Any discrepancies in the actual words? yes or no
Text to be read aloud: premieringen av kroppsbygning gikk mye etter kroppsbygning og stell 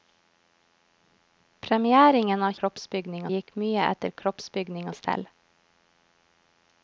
no